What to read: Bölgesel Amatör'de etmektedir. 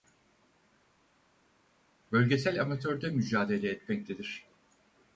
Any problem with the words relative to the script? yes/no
yes